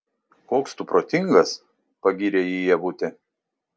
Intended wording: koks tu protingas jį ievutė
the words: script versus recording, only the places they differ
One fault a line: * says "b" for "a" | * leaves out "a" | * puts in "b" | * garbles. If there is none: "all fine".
* puts in "pagyrė"